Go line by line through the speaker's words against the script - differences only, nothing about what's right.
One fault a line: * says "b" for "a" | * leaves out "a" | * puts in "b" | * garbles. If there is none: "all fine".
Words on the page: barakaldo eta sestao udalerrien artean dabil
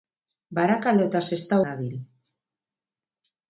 * leaves out "udalerrien artean"